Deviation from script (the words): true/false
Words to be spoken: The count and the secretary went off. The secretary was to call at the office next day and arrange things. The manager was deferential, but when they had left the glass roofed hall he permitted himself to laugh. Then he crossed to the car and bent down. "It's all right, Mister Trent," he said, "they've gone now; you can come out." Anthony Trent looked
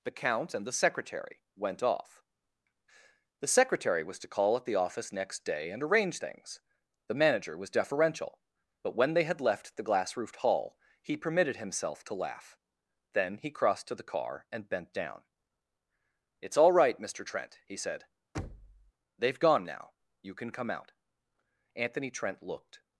false